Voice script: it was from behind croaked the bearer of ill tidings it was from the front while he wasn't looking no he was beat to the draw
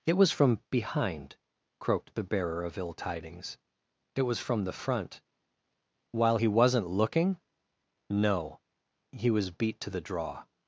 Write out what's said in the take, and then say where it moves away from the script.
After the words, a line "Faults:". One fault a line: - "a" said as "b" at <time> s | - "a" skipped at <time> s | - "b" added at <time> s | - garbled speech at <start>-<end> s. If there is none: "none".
it was from behind croaked the bearer of ill tidings it was from the front while he wasn't looking no he was beat to the draw
Faults:
none